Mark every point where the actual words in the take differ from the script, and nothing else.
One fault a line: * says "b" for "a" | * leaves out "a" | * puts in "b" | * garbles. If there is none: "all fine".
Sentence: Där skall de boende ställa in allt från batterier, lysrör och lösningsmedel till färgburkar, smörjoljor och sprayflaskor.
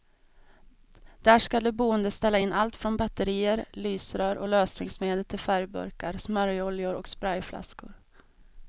all fine